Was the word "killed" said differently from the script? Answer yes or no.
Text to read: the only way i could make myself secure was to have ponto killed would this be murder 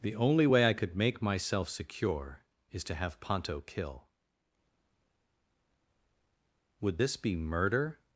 yes